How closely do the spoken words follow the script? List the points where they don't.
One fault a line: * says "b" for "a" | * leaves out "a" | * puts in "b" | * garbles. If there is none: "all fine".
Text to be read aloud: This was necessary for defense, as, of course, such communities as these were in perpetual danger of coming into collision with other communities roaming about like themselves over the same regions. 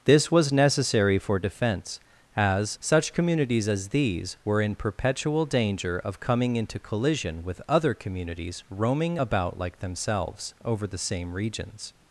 * leaves out "of course"